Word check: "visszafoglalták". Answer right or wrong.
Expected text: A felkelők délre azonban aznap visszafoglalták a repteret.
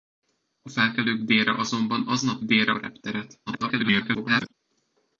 wrong